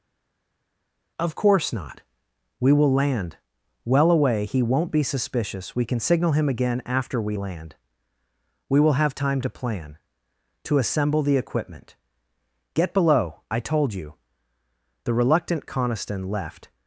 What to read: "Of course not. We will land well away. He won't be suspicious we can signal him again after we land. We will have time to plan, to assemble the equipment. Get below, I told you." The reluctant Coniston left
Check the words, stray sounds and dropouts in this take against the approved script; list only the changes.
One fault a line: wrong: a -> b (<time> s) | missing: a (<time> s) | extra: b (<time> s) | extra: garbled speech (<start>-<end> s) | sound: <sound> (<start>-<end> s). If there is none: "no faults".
no faults